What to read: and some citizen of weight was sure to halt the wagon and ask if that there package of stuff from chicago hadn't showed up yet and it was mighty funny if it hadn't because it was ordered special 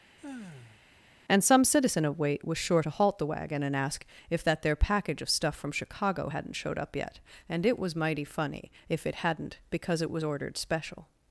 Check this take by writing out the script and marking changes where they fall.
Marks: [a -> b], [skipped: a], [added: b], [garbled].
and some citizen of weight was sure to halt the wagon and ask if that there package of stuff from chicago hadn't showed up yet and it was mighty funny if it hadn't because it was ordered special